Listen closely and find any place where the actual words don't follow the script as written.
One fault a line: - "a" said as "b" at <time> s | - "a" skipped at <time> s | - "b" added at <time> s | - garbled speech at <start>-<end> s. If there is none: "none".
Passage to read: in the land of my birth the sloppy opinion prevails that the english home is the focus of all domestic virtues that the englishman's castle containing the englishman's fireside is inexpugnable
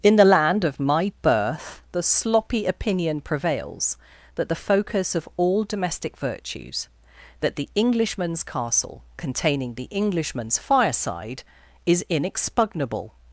- "english home is the" skipped at 4.5 s